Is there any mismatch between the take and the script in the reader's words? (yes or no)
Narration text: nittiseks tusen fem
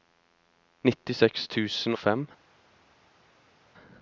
no